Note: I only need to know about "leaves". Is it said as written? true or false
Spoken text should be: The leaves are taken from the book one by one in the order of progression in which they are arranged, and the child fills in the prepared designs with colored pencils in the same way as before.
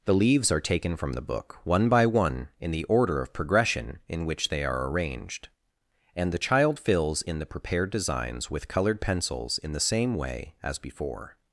true